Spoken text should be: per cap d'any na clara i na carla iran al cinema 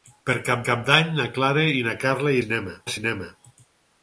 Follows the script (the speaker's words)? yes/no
no